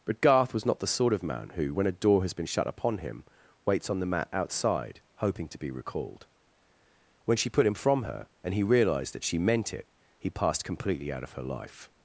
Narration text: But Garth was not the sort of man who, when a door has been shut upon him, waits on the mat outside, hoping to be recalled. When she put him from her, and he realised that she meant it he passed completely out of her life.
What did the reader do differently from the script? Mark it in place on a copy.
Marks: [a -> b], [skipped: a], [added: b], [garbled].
But Garth was not the sort of man who, when a door has been shut upon him, waits on the mat outside, hoping to be recalled. When she put him from her, and he realised that she meant it he passed completely out of her life.